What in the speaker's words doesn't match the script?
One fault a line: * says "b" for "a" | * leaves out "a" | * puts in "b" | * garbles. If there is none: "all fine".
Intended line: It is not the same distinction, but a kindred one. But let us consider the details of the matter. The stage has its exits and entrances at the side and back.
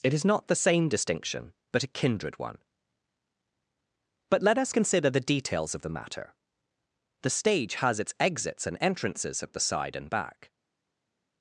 all fine